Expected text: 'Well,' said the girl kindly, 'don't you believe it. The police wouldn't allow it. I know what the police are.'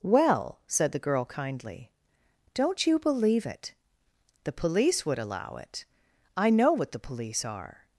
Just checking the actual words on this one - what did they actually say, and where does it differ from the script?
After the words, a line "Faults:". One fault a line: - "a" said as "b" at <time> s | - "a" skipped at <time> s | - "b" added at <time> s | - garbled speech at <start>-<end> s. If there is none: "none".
'Well,' said the girl kindly, 'don't you believe it. The police would allow it. I know what the police are.'
Faults:
- "wouldn't" said as "would" at 5.0 s